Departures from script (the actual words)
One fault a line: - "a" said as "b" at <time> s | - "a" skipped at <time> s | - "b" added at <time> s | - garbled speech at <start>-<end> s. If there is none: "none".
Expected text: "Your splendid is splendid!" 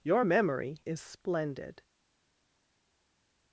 - "splendid" said as "memory" at 0.2 s